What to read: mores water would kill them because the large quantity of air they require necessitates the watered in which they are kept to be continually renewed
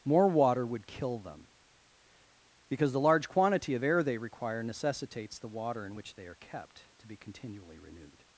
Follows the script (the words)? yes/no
no